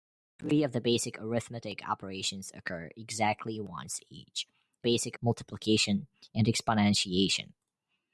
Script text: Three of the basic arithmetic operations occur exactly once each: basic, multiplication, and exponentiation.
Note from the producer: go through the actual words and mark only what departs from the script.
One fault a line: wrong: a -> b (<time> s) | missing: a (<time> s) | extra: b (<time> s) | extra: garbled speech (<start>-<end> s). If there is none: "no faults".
no faults